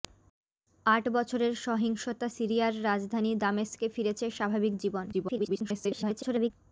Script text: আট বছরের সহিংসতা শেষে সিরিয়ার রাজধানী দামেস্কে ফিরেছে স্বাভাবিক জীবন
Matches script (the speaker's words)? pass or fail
fail